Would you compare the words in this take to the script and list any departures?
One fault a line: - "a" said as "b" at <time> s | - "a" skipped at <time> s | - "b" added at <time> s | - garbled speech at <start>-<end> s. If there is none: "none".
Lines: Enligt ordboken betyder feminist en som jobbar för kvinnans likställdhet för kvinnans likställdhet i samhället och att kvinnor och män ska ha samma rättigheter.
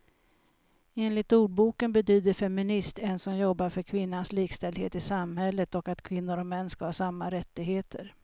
- "för kvinnans likställdhet" skipped at 5.0 s